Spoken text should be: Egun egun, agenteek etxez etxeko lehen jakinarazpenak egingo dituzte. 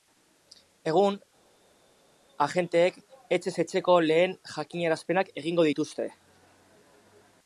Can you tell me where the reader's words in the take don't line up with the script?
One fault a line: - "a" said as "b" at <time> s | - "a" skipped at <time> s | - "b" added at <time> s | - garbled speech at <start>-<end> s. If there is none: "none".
- "egun" skipped at 1.2 s